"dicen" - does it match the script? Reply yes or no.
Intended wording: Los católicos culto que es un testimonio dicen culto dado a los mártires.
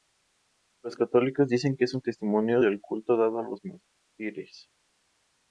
no